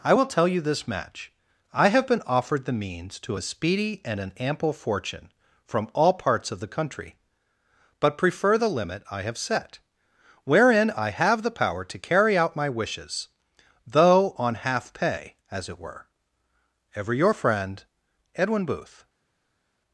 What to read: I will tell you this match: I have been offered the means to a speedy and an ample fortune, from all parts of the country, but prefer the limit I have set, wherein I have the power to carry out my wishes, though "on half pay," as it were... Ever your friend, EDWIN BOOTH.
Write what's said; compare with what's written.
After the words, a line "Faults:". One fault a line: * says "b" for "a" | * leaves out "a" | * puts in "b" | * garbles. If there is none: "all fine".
I will tell you this match: I have been offered the means to a speedy and an ample fortune, from all parts of the country, but prefer the limit I have set, wherein I have the power to carry out my wishes, though "on half pay," as it were... Ever your friend, EDWIN BOOTH.
Faults:
all fine